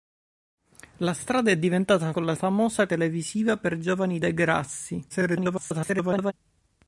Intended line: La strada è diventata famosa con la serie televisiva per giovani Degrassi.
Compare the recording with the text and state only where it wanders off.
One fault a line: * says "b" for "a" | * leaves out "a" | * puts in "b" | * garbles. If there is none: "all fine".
* leaves out "famosa"
* says "famosa" for "serie"
* garbles